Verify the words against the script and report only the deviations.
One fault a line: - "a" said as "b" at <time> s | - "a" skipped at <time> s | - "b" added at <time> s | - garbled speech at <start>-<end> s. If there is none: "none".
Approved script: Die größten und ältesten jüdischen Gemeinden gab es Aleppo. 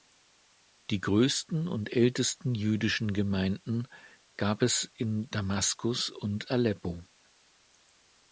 - "in Damaskus und" added at 5.0 s